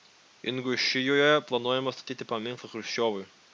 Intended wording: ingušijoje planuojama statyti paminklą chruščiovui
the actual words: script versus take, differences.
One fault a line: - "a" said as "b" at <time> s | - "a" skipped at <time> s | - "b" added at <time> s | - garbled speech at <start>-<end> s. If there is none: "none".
none